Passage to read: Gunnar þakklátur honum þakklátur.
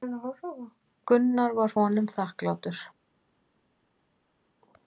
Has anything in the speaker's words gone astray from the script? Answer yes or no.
yes